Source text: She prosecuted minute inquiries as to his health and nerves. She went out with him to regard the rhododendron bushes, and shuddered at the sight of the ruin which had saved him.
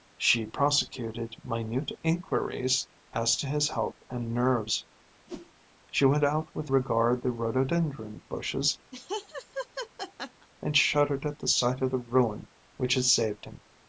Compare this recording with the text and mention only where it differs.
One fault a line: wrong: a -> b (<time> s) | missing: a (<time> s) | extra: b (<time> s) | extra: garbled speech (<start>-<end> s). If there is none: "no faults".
missing: him to (6.7 s)